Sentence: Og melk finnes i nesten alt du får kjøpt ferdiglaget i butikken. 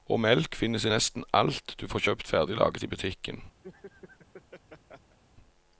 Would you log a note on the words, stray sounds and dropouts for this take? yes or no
yes